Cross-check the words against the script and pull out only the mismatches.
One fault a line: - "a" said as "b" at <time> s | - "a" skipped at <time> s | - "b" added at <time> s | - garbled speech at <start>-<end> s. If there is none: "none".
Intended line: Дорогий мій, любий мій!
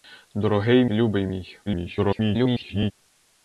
- "мій" skipped at 0.8 s
- garbled speech at 1.7-2.9 s